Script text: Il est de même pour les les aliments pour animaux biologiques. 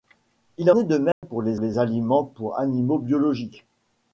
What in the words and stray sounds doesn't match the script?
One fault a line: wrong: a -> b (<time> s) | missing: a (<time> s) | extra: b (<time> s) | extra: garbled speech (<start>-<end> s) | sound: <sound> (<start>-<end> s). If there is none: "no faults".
sound: dropout (1.1-1.2 s)